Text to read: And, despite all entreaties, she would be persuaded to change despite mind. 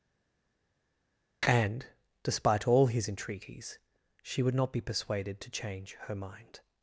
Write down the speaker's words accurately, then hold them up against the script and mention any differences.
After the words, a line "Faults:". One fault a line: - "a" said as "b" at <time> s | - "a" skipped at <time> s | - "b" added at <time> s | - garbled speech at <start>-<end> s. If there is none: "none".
And, despite all his entreaties, she would not be persuaded to change her mind.
Faults:
- "his" added at 2.9 s
- "not" added at 4.5 s
- "despite" said as "her" at 6.0 s